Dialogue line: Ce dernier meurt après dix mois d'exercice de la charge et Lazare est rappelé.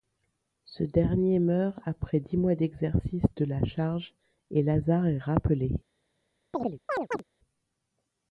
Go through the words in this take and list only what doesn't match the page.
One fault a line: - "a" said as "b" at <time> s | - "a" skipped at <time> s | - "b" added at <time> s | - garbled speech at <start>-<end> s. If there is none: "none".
none